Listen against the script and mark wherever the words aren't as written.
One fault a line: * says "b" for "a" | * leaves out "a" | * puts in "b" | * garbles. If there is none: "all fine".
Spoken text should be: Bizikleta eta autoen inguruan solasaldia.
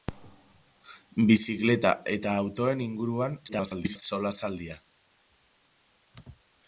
* garbles